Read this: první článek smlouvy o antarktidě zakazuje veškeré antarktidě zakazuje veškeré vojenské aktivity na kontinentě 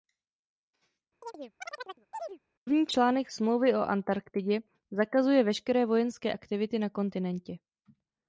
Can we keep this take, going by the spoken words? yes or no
no